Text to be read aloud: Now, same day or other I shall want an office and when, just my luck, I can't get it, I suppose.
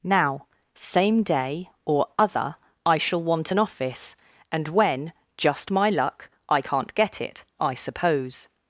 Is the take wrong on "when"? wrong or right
right